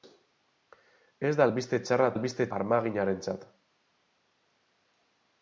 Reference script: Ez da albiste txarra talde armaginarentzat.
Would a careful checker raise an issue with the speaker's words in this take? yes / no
yes